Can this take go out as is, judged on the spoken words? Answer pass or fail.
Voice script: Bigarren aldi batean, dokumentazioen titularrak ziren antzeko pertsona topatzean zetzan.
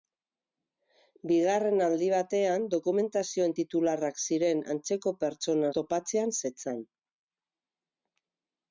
pass